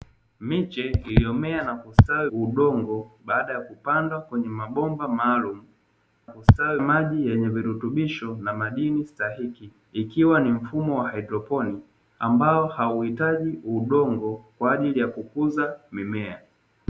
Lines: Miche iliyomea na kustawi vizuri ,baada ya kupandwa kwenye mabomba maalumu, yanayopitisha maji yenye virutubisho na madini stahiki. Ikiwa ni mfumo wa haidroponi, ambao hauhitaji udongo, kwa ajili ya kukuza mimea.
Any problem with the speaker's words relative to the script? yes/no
yes